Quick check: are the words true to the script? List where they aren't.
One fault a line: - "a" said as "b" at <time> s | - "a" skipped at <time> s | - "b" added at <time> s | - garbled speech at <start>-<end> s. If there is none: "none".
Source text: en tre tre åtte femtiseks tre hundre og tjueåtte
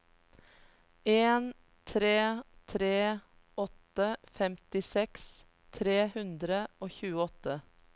none